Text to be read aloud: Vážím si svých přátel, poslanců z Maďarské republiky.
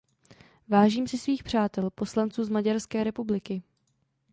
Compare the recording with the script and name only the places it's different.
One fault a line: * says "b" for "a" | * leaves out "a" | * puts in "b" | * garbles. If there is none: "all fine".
all fine